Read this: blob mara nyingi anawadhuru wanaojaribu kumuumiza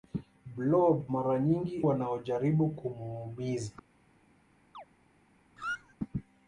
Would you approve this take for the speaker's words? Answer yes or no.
no